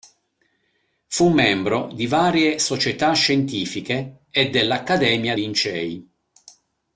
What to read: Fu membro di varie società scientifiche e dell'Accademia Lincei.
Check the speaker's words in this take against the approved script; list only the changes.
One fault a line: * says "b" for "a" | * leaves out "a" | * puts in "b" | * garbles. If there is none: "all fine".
all fine